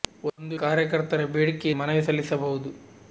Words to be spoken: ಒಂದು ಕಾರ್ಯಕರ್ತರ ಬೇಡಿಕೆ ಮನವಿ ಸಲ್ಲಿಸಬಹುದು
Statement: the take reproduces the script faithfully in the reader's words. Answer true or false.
true